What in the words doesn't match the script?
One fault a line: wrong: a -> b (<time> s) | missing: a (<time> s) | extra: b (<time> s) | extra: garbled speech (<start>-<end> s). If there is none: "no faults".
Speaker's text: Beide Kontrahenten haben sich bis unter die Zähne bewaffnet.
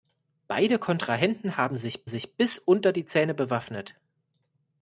extra: sich (2.1 s)